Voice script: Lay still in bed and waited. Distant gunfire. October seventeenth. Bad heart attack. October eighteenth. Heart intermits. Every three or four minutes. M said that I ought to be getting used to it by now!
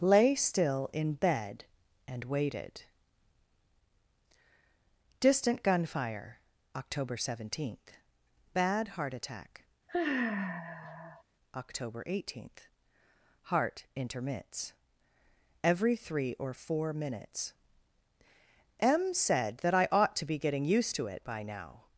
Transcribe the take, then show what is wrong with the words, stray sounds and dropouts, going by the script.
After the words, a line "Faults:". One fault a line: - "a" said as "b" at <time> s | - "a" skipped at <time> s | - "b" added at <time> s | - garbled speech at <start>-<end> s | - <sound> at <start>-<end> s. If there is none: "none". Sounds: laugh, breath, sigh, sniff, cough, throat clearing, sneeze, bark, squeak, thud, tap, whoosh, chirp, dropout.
Lay still in bed and waited. Distant gunfire. October seventeenth. Bad heart attack. October eighteenth. Heart intermits. Every three or four minutes. M said that I ought to be getting used to it by now!
Faults:
- sigh at 9.9-11.2 s